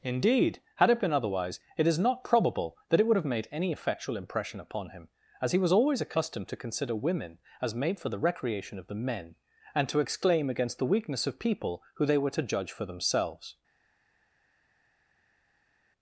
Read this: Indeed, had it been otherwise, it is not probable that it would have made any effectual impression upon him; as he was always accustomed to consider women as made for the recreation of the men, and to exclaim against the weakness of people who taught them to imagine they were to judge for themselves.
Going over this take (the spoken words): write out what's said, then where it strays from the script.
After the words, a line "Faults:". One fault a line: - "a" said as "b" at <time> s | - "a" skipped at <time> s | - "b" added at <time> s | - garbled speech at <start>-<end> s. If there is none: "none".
Indeed, had it been otherwise, it is not probable that it would have made any effectual impression upon him; as he was always accustomed to consider women as made for the recreation of the men, and to exclaim against the weakness of people who they were to judge for themselves.
Faults:
- "taught them to imagine" skipped at 12.1 s